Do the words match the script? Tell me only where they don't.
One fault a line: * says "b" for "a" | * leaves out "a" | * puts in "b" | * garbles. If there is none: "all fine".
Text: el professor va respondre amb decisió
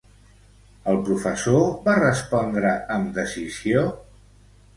all fine